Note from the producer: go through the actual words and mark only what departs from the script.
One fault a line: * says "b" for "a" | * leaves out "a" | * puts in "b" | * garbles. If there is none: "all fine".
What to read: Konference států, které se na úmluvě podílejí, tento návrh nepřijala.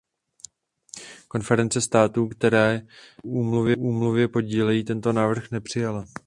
all fine